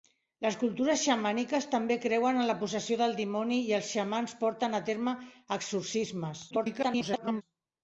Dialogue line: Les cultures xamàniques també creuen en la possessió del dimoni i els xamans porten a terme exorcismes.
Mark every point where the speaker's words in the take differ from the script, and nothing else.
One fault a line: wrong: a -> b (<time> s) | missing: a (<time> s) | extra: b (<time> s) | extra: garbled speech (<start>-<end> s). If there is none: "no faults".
extra: garbled speech (6.5-7.4 s)